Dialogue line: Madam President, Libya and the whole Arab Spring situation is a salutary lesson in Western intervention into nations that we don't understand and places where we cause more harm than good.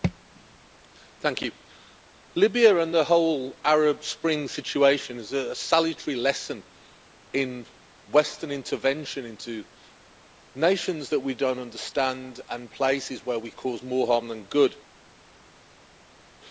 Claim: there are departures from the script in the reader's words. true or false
false